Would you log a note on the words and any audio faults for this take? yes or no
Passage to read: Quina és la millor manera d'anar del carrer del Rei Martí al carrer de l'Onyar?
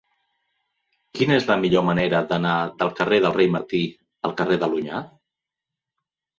no